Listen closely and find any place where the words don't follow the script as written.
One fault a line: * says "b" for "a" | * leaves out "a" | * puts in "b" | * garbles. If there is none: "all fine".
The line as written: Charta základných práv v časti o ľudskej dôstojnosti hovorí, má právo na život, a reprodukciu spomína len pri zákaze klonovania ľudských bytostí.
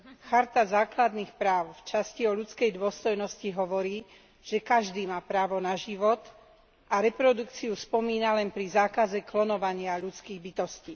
* puts in "že každý"